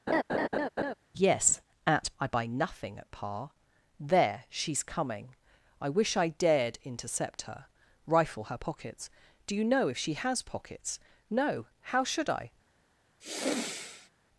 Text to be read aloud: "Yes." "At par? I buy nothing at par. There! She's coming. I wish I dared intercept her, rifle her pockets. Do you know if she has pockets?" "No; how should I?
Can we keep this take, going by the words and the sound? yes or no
no